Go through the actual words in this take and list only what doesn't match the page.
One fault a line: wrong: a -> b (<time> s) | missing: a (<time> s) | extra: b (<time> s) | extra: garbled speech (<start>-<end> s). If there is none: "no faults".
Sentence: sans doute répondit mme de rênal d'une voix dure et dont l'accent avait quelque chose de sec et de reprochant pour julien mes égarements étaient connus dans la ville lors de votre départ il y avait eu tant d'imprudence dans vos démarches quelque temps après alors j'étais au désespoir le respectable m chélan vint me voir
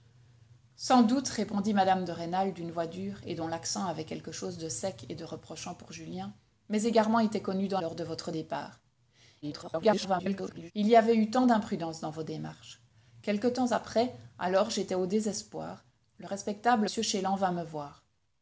missing: la ville (7.8 s)
extra: garbled speech (9.4-10.7 s)
missing: m (16.9 s)